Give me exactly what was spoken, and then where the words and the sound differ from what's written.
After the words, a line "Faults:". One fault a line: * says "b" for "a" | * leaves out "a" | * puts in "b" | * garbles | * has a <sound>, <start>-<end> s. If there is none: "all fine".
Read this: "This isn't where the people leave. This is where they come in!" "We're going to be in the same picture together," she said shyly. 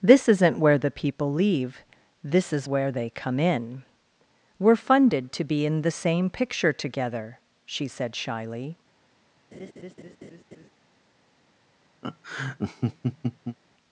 "This isn't where the people leave. This is where they come in!" "We're funded to be in the same picture together," she said shyly.
Faults:
* says "funded" for "going"
* has a laugh, 9.5-10.7 s
* has a laugh, 12.0-13.6 s